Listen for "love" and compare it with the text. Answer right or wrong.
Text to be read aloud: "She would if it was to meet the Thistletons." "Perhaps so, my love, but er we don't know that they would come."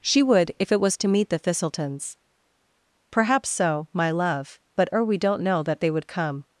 right